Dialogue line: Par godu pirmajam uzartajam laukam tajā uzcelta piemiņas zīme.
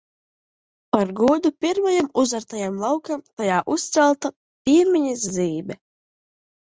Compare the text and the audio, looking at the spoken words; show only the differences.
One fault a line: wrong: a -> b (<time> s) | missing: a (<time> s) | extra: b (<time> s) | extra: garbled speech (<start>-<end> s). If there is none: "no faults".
no faults